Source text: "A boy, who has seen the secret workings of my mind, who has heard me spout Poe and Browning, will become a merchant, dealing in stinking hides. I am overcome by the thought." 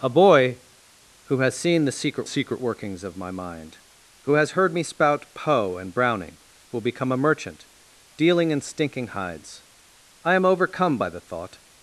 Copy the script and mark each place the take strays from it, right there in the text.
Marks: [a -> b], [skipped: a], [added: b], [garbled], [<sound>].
"A boy, who has seen the secret [added: secret] workings of my mind, who has heard me spout Poe and Browning, will become a merchant, dealing in stinking hides. I am overcome by the thought."